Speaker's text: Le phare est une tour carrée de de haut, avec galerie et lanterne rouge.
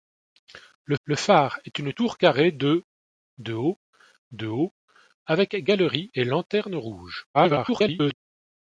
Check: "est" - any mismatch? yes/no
no